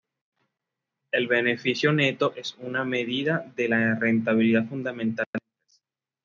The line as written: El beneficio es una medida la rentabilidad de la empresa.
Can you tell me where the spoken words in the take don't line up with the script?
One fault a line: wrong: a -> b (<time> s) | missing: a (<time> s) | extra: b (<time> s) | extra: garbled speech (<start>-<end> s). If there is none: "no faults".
extra: neto (1.9 s)
extra: de (3.6 s)
extra: fundamental (4.7 s)